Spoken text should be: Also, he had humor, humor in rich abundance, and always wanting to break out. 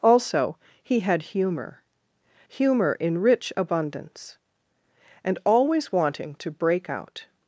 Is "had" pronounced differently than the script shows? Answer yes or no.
no